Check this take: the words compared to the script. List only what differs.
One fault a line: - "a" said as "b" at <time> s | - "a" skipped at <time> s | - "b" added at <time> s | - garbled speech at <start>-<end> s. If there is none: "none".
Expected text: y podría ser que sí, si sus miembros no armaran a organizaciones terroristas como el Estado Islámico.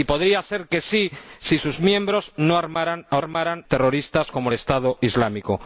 - "organizaciones" said as "armaran" at 3.2 s